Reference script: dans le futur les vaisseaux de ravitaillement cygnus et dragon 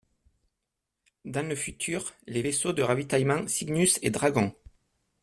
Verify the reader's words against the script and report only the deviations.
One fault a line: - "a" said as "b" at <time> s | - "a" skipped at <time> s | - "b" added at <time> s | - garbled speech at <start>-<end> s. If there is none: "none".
none